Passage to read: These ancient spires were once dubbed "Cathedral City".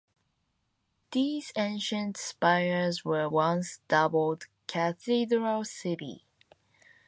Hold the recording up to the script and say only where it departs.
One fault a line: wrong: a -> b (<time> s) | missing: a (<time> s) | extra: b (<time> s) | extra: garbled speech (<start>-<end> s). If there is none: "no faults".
no faults